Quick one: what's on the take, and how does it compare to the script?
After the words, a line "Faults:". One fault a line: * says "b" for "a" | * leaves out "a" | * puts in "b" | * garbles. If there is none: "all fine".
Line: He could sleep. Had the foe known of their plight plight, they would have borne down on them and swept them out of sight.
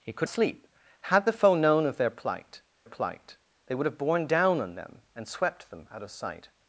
He could sleep. Had the foe known of their plight plight, they would have borne down on them and swept them out of sight.
Faults:
all fine